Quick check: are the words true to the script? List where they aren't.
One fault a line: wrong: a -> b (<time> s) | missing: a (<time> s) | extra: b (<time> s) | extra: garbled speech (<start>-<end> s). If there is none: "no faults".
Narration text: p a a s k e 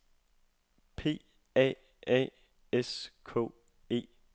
no faults